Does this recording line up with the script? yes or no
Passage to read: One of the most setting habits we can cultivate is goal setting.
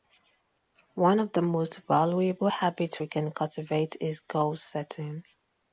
no